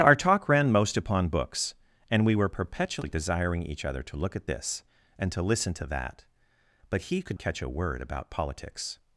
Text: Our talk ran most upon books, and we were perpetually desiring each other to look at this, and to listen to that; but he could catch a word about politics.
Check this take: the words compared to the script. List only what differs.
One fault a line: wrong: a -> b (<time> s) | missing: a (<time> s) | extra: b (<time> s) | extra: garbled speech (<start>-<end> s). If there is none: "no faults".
no faults